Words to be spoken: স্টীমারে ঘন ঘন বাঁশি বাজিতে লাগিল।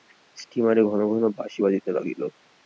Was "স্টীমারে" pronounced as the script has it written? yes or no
yes